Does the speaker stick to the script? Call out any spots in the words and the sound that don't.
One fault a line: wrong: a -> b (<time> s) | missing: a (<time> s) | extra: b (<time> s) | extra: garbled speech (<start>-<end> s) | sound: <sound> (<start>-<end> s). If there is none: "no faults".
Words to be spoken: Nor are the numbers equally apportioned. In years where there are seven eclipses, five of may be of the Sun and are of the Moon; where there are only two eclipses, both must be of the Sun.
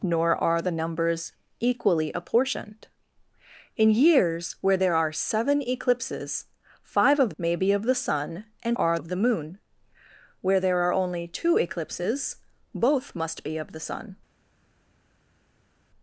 no faults